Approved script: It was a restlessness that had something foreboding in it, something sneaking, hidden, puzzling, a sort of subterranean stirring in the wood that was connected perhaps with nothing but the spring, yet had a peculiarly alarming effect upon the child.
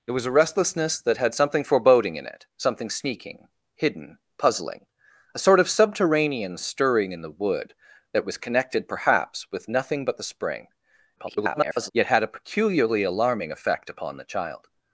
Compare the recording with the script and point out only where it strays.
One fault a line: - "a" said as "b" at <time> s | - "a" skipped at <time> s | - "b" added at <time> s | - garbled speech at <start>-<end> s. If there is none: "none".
- garbled speech at 11.2-11.9 s